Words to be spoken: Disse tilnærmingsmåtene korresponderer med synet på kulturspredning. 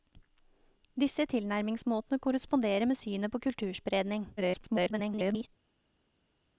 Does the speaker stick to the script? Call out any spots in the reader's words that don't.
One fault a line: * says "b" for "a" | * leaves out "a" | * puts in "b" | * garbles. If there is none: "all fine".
* garbles